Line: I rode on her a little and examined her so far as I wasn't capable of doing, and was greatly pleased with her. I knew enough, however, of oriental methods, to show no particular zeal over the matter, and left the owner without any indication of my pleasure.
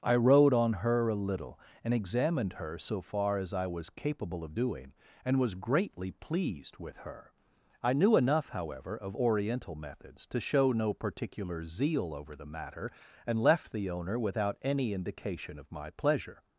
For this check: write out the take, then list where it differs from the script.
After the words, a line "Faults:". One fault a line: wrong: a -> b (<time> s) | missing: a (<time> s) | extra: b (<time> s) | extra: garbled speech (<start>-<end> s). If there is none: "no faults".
I rode on her a little and examined her so far as I was capable of doing, and was greatly pleased with her. I knew enough, however, of oriental methods, to show no particular zeal over the matter, and left the owner without any indication of my pleasure.
Faults:
wrong: wasn't -> was (3.7 s)